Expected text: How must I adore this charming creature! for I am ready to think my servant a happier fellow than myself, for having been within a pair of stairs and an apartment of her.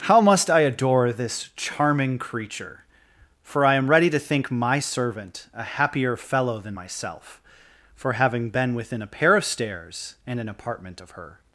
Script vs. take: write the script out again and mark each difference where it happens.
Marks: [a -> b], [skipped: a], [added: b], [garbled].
How must I adore this charming creature! for I am ready to think my servant a happier fellow than myself, for having been within a pair of stairs and an apartment of her.